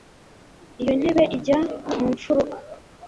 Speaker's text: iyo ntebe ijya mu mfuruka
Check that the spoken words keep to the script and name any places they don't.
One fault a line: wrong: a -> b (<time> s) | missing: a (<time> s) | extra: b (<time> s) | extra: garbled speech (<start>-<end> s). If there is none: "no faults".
no faults